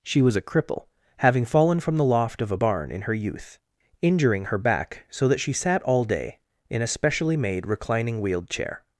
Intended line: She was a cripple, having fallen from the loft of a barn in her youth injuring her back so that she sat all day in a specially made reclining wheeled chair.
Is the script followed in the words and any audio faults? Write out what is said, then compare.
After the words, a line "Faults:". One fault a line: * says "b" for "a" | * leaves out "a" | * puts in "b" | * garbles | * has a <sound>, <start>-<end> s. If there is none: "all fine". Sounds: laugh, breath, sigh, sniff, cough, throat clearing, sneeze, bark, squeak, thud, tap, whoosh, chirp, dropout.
She was a cripple, having fallen from the loft of a barn in her youth injuring her back so that she sat all day in a specially made reclining wheeled chair.
Faults:
all fine